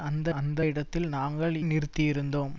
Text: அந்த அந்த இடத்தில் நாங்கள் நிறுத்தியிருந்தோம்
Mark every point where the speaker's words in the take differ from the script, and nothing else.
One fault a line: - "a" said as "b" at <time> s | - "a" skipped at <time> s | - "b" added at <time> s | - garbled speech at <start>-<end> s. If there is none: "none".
none